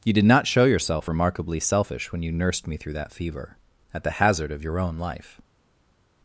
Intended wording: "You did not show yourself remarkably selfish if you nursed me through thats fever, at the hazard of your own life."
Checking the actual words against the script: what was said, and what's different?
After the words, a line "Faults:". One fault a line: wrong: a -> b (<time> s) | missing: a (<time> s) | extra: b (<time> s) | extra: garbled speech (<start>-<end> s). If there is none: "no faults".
"You did not show yourself remarkably selfish when you nursed me through that fever, at the hazard of your own life."
Faults:
wrong: if -> when (2.1 s)
wrong: thats -> that (2.9 s)